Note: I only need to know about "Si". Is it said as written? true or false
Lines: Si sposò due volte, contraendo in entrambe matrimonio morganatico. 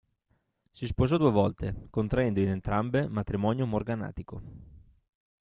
true